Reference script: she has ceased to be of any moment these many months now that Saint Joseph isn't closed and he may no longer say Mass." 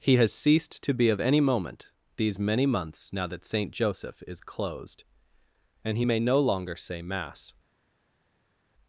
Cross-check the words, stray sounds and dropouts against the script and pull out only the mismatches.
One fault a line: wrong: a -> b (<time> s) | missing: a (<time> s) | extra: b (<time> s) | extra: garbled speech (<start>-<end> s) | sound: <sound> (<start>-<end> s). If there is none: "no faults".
wrong: she -> he (0.0 s)
wrong: isn't -> is (4.3 s)